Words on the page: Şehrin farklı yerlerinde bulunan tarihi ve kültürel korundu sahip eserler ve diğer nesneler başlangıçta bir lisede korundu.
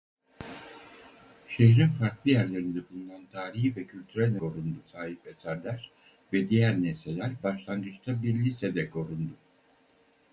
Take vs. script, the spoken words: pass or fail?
pass